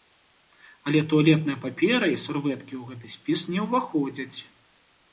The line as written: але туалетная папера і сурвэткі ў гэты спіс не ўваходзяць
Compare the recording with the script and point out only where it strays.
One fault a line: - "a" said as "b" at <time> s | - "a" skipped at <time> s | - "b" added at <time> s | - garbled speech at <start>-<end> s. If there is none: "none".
none